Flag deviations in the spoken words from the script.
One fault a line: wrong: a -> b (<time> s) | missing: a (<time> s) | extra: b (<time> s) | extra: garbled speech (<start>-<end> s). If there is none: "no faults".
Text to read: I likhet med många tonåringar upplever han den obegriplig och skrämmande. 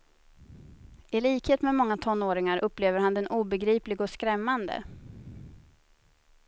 no faults